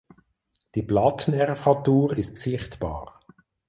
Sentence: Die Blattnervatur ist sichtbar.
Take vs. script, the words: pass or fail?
pass